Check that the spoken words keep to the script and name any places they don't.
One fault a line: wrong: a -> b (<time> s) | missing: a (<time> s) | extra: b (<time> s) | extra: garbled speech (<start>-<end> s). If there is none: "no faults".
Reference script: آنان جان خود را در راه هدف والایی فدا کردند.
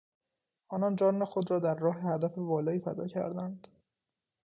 no faults